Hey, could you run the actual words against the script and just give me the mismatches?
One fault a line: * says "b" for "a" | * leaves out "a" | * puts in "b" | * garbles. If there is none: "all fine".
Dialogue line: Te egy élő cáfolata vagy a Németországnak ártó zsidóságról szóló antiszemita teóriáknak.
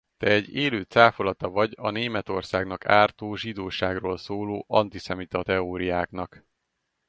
all fine